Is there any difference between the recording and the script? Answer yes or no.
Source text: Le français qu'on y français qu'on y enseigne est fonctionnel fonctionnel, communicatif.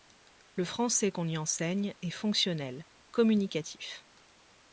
yes